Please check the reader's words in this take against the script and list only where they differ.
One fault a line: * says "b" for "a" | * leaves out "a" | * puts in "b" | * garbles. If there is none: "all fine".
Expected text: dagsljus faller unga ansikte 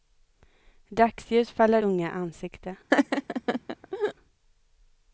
all fine